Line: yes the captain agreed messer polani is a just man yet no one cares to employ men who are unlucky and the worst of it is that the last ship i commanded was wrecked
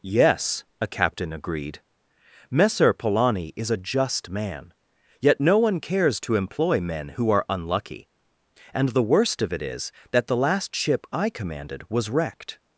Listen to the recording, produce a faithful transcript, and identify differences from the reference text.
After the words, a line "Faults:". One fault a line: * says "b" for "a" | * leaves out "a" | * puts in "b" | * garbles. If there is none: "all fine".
yes a captain agreed messer polani is a just man yet no one cares to employ men who are unlucky and the worst of it is that the last ship i commanded was wrecked
Faults:
* says "a" for "the"